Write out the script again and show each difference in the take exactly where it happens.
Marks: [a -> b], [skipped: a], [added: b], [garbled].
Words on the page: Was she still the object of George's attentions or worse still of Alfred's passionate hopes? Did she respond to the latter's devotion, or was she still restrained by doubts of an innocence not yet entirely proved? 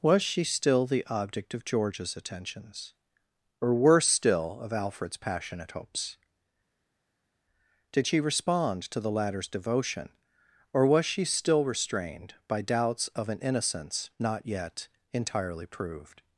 Was she still the object of George's attentions or worse still of Alfred's passionate hopes? Did she respond to the latter's devotion, or was she still restrained by doubts of an innocence not yet entirely proved?